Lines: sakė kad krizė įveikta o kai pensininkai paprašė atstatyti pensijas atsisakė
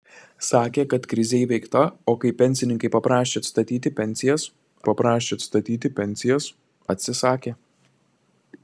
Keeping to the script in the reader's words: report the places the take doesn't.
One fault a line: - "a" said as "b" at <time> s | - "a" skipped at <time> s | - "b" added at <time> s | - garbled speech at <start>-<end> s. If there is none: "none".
- "paprašė atstatyti pensijas" added at 4.9 s